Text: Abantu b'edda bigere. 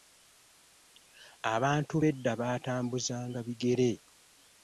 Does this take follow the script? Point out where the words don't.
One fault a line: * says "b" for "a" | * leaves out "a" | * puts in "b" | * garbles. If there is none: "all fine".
* puts in "baatambuzanga"